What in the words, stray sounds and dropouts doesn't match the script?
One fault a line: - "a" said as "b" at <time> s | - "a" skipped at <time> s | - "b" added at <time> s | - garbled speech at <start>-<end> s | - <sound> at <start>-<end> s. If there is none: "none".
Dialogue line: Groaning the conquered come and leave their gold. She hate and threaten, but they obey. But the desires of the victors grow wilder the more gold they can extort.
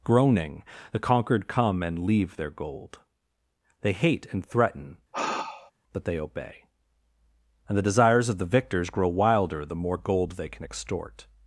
- "She" said as "They" at 3.8 s
- sigh at 5.1-5.7 s
- "But" said as "And" at 7.7 s